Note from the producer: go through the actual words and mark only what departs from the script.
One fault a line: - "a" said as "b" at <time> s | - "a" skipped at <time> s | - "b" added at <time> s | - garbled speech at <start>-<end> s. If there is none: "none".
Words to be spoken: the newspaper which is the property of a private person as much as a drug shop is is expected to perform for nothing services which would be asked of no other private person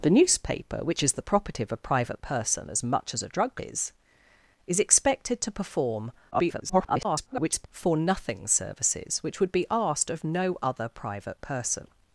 - "shop" skipped at 3.6 s
- garbled speech at 6.3-7.7 s